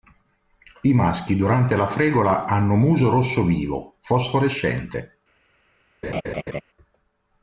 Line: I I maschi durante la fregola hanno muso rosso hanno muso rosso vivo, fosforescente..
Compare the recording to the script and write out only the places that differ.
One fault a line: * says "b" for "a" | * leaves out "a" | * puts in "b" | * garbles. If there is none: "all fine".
* leaves out "I"
* leaves out "hanno muso rosso"